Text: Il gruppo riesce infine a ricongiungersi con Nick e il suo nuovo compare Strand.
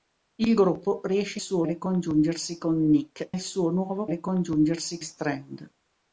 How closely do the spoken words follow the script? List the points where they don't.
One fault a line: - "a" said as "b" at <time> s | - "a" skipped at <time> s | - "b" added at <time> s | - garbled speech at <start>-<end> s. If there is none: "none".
- "infine" said as "suo" at 1.4 s
- "e" skipped at 3.3 s
- "compare" said as "ricongiungersi" at 4.1 s